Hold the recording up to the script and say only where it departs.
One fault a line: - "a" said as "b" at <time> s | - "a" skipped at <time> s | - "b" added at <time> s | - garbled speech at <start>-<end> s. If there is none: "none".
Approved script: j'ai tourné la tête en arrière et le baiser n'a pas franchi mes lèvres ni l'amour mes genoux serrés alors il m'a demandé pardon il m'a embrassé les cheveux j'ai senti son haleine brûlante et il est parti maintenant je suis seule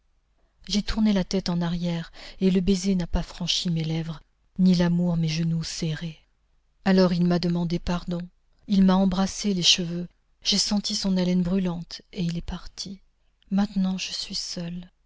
none